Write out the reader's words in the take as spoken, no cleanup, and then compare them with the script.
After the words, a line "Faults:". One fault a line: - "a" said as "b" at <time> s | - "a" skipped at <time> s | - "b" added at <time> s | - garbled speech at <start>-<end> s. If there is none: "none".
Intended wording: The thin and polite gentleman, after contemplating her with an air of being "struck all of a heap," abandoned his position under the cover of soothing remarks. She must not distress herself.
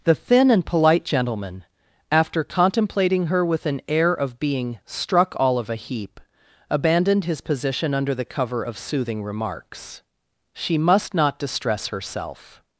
The thin and polite gentleman, after contemplating her with an air of being "struck all of a heap," abandoned his position under the cover of soothing remarks. She must not distress herself.
Faults:
none